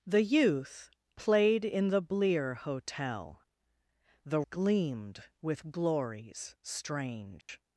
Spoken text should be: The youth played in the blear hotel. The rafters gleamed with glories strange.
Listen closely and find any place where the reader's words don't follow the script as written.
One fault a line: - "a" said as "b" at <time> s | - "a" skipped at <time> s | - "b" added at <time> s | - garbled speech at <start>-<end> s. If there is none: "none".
- "rafters" skipped at 4.4 s